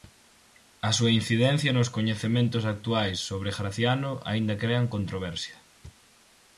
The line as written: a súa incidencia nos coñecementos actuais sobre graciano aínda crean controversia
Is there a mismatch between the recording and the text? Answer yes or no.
no